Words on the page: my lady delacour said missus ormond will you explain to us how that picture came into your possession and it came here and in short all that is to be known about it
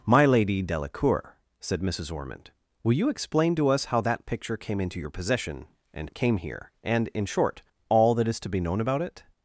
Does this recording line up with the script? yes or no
yes